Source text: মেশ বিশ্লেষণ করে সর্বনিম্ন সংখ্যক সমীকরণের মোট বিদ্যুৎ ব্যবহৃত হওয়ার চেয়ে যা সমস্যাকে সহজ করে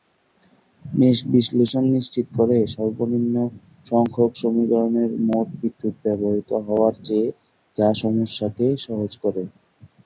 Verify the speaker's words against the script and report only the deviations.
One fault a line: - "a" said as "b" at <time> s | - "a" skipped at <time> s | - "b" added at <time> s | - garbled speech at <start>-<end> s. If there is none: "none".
- "নিশ্চিত" added at 1.9 s